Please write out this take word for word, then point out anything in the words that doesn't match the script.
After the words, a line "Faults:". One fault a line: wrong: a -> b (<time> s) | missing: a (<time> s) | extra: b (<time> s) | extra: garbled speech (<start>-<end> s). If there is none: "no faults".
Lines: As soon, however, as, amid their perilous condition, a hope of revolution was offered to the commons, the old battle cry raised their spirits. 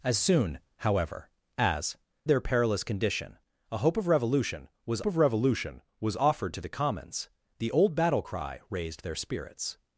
As soon, however, as, their perilous condition, a hope of revolution was of revolution was offered to the commons, the old battle cry raised their spirits.
Faults:
missing: amid (2.0 s)
extra: of revolution was (5.0 s)